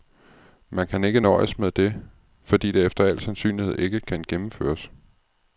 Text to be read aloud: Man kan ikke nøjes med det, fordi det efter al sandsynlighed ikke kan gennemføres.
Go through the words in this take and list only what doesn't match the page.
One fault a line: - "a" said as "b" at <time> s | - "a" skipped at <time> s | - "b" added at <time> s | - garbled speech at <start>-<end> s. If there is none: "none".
none